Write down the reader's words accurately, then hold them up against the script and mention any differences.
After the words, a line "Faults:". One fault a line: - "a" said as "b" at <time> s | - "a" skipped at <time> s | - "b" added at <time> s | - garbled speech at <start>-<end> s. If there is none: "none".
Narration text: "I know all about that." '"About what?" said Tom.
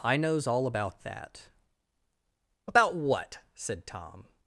"I knows all about that." '"About what?" said Tom.
Faults:
- "know" said as "knows" at 0.2 s